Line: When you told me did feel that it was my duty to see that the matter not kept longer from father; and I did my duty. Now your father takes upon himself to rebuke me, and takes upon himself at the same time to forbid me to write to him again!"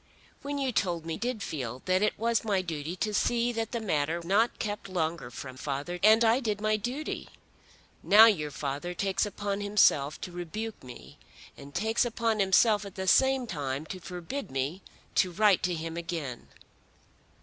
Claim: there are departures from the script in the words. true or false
false